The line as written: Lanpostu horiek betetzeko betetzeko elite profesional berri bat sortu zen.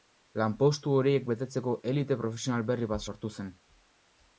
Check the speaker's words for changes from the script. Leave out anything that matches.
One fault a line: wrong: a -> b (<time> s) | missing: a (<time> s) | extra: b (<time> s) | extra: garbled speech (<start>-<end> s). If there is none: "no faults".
missing: betetzeko (1.8 s)